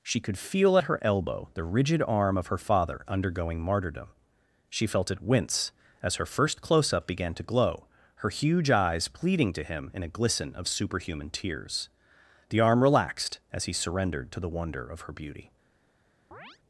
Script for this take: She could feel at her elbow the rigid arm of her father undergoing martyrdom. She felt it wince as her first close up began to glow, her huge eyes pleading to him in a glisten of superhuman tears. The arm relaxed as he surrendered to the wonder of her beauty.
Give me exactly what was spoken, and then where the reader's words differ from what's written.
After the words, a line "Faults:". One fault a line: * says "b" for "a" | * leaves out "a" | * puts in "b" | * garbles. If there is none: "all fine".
She could feel at her elbow the rigid arm of her father undergoing martyrdom. She felt it wince as her first close up began to glow, her huge eyes pleading to him in a glisten of superhuman tears. The arm relaxed as he surrendered to the wonder of her beauty.
Faults:
all fine